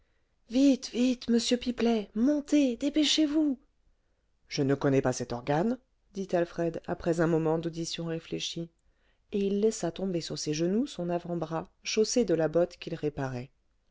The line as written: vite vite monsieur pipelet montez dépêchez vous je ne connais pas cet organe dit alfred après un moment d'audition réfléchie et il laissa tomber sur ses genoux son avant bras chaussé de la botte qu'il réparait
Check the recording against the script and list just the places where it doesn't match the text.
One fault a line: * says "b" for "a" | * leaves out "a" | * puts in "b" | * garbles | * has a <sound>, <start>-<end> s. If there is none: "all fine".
all fine